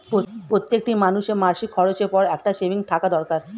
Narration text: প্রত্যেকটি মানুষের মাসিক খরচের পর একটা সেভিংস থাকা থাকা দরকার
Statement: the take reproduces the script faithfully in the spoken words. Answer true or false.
false